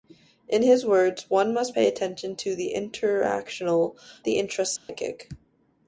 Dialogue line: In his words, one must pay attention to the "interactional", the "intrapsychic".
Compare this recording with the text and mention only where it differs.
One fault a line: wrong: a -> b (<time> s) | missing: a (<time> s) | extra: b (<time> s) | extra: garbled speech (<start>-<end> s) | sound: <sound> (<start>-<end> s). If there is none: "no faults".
sound: dropout (4.8-4.9 s)